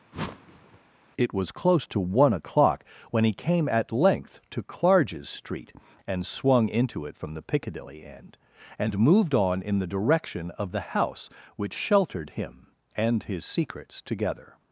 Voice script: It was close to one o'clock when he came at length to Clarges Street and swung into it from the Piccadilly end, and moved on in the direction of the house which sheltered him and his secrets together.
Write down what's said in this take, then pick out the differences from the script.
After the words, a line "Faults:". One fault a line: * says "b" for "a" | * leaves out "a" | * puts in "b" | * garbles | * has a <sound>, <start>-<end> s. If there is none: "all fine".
It was close to one o'clock when he came at length to Clarges Street and swung into it from the Piccadilly end, and moved on in the direction of the house which sheltered him and his secrets together.
Faults:
* has a whoosh, 0.1-0.8 s